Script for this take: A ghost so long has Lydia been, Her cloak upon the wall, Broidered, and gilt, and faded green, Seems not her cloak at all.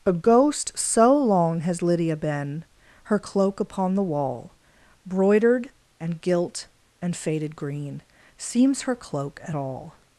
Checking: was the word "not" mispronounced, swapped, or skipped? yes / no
yes